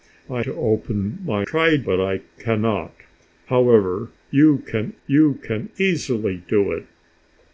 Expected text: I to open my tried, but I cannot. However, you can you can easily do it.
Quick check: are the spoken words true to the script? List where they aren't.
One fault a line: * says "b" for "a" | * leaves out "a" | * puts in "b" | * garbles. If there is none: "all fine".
all fine